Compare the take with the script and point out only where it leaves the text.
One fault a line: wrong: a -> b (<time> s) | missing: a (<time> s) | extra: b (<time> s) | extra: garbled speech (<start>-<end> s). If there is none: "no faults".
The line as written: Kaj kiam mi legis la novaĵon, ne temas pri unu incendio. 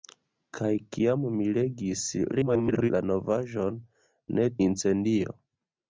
extra: garbled speech (2.3-2.9 s)
missing: temas pri unu (4.5 s)